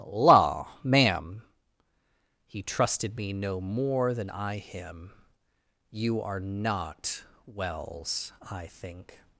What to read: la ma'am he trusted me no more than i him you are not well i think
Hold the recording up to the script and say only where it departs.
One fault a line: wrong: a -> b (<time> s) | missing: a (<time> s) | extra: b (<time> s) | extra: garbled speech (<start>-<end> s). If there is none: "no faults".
wrong: well -> wells (7.5 s)